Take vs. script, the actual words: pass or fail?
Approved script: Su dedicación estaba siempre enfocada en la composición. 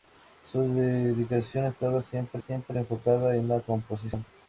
fail